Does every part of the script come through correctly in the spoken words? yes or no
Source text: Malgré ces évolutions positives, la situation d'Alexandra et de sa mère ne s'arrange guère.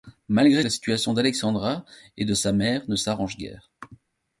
no